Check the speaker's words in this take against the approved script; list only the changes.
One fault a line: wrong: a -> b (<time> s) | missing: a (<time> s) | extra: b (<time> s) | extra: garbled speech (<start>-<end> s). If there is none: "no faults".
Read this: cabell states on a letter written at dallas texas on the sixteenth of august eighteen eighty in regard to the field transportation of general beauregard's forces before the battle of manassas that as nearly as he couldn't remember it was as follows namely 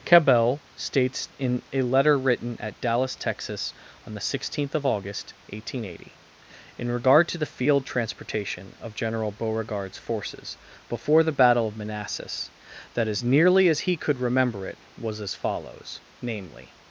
wrong: on -> in (1.4 s)
wrong: couldn't -> could (13.9 s)